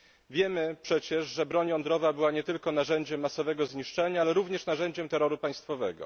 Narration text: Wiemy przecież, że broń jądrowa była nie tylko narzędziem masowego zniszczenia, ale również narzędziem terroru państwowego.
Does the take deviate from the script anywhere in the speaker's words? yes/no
no